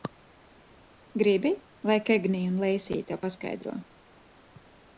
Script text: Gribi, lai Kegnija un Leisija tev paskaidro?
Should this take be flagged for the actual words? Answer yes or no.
no